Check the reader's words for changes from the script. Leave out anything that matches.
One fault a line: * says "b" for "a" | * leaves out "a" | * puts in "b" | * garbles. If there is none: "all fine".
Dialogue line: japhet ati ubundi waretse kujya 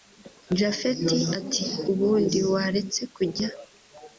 all fine